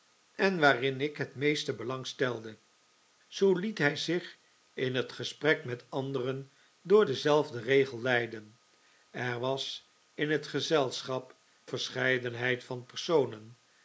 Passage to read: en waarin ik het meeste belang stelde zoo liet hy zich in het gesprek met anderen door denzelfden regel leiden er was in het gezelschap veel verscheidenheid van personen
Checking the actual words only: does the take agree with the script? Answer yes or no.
no